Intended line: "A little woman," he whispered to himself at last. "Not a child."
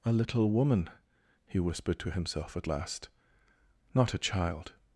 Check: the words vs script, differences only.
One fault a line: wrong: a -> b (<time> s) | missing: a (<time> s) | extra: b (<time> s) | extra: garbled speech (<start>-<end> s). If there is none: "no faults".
no faults